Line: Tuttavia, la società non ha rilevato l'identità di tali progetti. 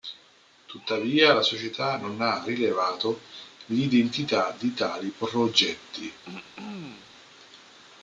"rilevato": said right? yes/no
yes